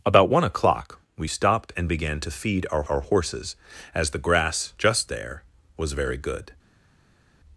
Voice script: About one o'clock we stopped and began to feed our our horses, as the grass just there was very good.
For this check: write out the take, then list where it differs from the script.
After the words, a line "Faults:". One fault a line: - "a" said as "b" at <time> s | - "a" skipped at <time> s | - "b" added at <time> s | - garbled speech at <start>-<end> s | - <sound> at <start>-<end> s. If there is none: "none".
About one o'clock we stopped and began to feed our our horses, as the grass just there was very good.
Faults:
none